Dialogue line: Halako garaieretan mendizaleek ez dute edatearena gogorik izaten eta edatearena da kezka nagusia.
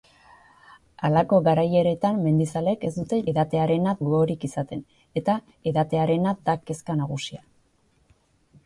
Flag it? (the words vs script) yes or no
no